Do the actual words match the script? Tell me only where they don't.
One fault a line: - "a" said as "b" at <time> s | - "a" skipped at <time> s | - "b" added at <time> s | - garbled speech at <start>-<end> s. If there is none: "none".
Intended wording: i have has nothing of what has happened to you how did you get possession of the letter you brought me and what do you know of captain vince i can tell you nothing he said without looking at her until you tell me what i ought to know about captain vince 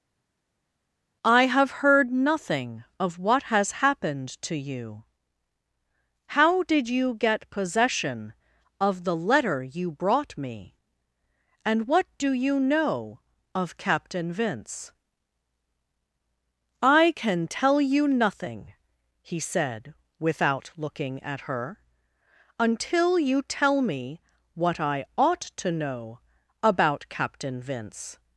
- "has" said as "heard" at 1.8 s